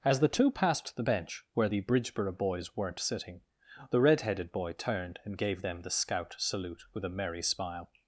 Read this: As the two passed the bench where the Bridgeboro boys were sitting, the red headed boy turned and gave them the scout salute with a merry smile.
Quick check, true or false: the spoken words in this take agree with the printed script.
false